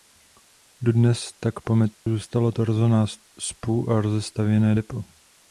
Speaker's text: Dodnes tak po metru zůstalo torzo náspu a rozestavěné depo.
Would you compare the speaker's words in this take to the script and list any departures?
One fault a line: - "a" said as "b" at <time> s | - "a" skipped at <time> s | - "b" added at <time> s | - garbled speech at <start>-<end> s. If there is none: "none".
none